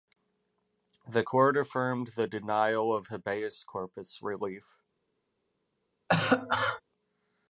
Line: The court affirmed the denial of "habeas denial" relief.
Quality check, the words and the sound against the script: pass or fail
fail